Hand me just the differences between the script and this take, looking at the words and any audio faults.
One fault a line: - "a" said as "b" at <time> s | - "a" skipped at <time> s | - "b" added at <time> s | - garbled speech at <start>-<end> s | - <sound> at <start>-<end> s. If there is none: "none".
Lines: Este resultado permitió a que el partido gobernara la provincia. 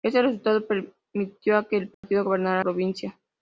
- dropout at 1.9-2.0 s
- "la" skipped at 2.6 s